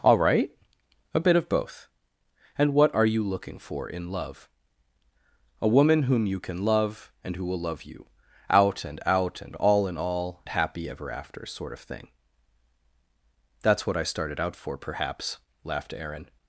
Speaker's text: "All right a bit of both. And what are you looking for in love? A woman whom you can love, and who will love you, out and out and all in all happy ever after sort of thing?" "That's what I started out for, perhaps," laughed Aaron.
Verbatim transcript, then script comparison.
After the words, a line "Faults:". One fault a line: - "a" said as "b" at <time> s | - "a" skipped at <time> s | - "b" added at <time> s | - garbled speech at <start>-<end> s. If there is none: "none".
"All right a bit of both. And what are you looking for in love? A woman whom you can love, and who will love you, out and out and all in all happy ever after sort of thing?" "That's what I started out for, perhaps," laughed Aaron.
Faults:
none